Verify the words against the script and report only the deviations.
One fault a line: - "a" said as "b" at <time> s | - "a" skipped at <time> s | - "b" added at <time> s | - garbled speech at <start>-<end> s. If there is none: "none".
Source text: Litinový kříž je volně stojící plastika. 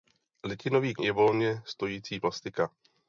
- "kříž" skipped at 0.9 s